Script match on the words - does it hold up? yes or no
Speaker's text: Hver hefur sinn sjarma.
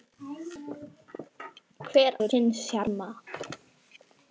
yes